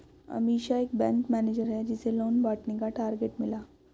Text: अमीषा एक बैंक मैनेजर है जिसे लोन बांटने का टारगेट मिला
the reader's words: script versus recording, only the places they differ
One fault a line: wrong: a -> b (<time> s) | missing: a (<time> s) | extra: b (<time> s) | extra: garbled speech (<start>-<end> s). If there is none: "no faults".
no faults